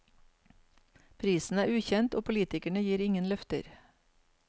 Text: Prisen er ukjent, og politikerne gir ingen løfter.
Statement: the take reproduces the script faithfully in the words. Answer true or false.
true